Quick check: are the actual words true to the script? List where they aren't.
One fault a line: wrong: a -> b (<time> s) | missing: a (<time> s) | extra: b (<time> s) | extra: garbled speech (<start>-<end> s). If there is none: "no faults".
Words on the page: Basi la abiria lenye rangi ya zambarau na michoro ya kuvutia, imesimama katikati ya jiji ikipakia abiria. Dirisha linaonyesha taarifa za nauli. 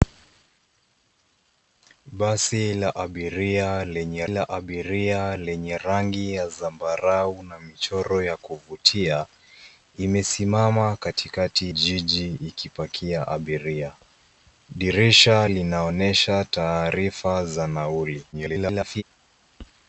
extra: la abiria lenye (4.3 s)
missing: ya (11.7 s)
extra: garbled speech (18.3-19.0 s)